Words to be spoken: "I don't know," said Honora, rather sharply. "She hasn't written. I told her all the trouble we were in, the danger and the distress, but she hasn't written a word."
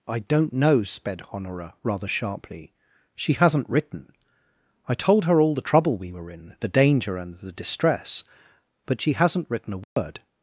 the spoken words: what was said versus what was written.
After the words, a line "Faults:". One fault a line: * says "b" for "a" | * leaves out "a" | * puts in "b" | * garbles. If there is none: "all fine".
"I don't know," sped Honora, rather sharply. "She hasn't written. I told her all the trouble we were in, the danger and the distress, but she hasn't written a word."
Faults:
* says "sped" for "said"